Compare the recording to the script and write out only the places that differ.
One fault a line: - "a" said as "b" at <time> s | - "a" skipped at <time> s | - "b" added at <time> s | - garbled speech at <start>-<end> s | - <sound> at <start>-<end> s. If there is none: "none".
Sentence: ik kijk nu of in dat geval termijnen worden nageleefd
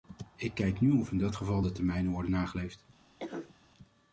- "de" added at 1.6 s
- cough at 3.2-3.5 s